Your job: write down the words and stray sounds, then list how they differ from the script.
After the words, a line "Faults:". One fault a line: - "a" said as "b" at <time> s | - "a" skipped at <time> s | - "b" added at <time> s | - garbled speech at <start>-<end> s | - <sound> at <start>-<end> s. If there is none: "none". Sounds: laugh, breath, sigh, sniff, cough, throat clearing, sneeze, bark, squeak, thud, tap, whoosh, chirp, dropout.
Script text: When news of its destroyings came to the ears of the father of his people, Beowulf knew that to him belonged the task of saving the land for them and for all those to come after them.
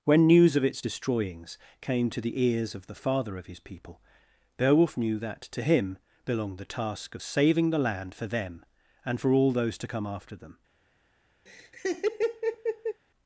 When news of its destroyings came to the ears of the father of his people, Beowulf knew that to him belonged the task of saving the land for them and for all those to come after them.
Faults:
- laugh at 11.5-13.0 s